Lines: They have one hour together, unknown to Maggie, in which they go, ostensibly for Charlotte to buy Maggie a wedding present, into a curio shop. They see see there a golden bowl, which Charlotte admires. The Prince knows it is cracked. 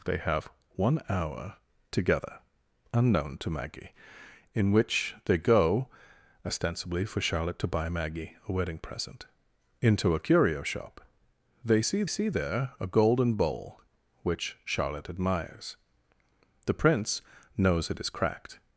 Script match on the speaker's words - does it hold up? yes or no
yes